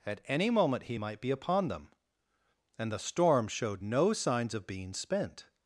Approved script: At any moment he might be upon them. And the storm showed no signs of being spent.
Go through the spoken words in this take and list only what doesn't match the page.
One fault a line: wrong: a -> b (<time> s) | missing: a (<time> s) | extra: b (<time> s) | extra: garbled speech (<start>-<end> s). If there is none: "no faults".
no faults